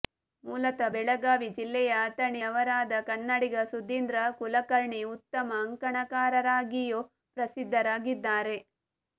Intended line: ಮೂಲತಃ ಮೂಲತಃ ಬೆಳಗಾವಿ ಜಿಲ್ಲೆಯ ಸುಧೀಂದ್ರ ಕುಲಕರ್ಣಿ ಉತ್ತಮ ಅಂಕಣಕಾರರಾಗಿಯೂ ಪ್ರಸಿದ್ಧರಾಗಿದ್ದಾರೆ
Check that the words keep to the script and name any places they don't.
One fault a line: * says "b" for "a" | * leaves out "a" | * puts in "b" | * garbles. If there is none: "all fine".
* leaves out "ಮೂಲತಃ"
* puts in "ಅಥಣಿ ಅವರಾದ ಕನ್ನಡಿಗ"